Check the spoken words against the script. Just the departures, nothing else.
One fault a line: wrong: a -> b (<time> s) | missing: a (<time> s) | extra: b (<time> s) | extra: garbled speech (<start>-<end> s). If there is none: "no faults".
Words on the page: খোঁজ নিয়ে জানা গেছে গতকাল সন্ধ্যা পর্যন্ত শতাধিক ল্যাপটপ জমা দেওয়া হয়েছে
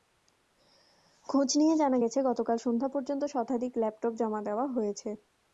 no faults